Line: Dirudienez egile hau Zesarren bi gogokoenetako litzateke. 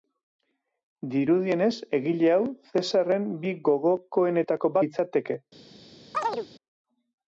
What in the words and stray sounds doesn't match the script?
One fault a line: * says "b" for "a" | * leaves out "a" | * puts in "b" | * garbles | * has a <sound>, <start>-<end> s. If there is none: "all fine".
* has a chirp, 6.1-6.5 s